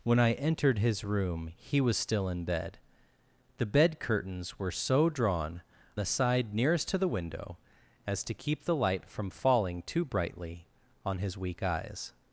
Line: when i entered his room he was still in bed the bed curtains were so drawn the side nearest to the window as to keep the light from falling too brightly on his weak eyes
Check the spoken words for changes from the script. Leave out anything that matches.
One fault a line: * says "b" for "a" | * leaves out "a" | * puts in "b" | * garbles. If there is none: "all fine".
all fine